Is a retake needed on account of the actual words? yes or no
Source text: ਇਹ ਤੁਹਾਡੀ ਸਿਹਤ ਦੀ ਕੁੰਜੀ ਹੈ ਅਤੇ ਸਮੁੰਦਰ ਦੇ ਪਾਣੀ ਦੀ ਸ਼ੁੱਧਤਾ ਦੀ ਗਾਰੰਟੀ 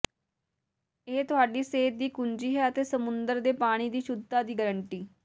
no